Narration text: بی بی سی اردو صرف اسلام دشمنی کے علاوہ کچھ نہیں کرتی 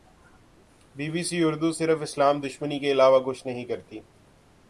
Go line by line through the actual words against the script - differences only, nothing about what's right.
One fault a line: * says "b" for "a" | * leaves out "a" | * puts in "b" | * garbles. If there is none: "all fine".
all fine